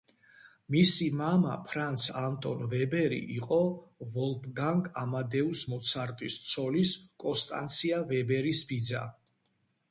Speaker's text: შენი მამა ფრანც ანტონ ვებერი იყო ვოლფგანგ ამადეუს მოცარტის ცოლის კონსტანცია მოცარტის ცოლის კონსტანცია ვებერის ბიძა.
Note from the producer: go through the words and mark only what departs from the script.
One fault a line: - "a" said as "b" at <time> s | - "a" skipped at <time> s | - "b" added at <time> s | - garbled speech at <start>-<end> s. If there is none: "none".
- "შენი" said as "მისი" at 0.8 s
- "მოცარტის ცოლის კონსტანცია" skipped at 8.0 s